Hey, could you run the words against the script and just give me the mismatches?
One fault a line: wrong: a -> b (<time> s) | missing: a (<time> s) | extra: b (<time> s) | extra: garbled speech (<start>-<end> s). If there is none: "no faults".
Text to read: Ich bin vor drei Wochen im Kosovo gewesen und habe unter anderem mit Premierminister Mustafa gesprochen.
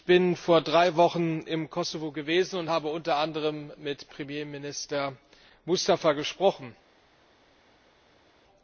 no faults